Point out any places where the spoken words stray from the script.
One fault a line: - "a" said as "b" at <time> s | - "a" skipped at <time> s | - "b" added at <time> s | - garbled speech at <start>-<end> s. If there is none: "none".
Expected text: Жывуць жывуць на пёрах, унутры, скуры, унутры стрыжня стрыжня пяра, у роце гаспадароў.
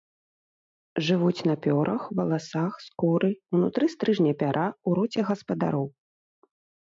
- "жывуць" skipped at 1.4 s
- "унутры" said as "валасах" at 2.2 s
- "стрыжня" skipped at 4.3 s